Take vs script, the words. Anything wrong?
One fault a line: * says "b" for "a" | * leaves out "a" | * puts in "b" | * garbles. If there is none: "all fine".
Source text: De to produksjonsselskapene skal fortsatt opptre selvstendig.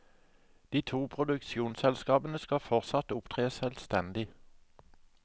all fine